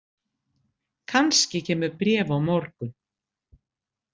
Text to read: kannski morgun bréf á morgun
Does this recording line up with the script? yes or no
no